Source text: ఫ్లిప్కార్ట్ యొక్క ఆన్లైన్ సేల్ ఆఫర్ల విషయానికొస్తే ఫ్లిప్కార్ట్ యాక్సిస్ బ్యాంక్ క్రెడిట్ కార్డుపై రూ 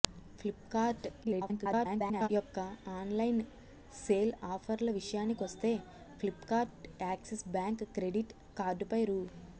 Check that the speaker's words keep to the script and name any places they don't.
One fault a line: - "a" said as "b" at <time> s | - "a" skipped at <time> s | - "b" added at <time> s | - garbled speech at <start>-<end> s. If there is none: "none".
- garbled speech at 1.2-2.3 s